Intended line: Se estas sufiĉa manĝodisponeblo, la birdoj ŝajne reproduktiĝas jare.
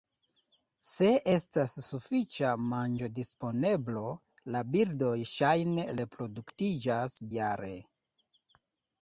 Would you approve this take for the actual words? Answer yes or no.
yes